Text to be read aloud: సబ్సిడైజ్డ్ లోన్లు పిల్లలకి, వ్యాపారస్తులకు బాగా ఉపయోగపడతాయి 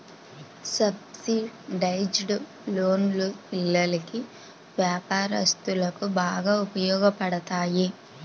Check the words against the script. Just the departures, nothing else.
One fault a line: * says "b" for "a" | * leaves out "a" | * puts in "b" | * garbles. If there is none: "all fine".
all fine